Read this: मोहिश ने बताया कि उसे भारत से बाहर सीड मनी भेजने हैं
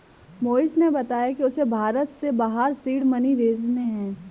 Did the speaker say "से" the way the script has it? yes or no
yes